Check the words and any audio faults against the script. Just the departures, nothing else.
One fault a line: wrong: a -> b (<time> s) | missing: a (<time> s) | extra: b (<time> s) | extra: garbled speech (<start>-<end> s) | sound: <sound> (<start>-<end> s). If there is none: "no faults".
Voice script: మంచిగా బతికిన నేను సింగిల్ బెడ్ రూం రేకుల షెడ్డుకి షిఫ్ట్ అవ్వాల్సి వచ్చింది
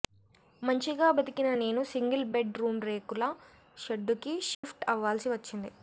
sound: dropout (4.5-4.6 s)